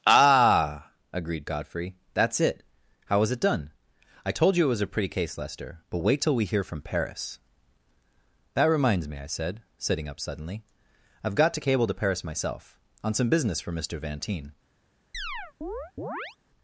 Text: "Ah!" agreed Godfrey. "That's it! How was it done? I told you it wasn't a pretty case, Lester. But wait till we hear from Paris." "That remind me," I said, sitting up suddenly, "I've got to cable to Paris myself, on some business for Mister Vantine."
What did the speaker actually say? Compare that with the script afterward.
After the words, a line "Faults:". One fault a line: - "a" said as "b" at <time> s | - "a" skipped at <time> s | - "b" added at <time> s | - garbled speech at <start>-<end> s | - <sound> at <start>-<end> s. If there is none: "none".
"Ah!" agreed Godfrey. "That's it! How was it done? I told you it was a pretty case, Lester. But wait till we hear from Paris." "That reminds me," I said, sitting up suddenly, "I've got to cable to Paris myself, on some business for Mister Vantine."
Faults:
- "wasn't" said as "was" at 4.7 s
- "remind" said as "reminds" at 8.7 s
- chirp at 15.1-16.4 s